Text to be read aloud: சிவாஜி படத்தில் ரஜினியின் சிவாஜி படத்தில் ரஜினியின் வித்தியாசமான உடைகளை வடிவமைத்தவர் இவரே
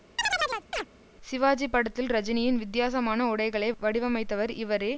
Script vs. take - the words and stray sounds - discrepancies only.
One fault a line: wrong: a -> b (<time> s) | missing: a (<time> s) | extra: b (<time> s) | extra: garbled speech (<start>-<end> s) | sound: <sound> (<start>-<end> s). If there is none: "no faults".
sound: chirp (0.2-0.9 s)
missing: சிவாஜி படத்தில் ரஜினியின் (2.6 s)